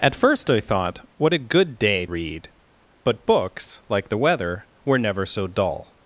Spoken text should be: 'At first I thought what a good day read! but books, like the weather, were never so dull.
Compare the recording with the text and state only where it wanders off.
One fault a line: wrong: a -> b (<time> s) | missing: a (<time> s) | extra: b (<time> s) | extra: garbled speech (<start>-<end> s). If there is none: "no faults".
no faults